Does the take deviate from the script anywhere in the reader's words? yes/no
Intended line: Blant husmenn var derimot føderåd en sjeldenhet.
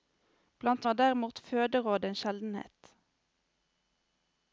yes